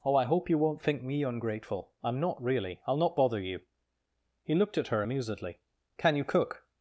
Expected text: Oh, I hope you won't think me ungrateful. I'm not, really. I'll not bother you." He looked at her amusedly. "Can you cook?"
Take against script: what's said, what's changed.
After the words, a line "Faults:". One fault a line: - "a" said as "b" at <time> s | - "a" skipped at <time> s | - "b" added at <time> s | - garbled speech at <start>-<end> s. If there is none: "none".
Oh, I hope you won't think me ungrateful. I'm not, really. I'll not bother you." He looked at her amusedly. "Can you cook?"
Faults:
none